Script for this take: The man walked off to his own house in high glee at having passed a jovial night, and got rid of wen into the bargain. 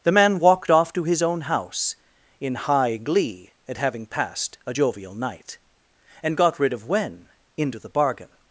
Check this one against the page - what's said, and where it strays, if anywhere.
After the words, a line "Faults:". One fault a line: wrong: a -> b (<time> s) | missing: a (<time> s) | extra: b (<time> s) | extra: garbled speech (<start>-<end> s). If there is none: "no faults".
The man walked off to his own house in high glee at having passed a jovial night, and got rid of wen into the bargain.
Faults:
no faults